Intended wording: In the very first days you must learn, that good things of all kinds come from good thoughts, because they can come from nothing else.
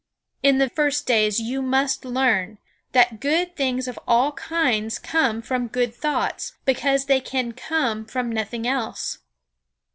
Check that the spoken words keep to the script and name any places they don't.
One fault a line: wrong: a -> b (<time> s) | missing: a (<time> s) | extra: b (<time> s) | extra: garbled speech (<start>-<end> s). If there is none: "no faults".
missing: very (0.7 s)